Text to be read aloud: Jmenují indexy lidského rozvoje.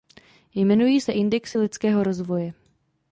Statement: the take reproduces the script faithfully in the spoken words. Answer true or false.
false